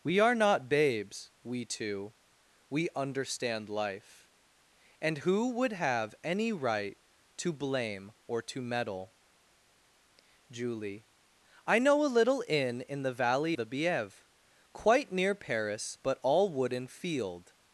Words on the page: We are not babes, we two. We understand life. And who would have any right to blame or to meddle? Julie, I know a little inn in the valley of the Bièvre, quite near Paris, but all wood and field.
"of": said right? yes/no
no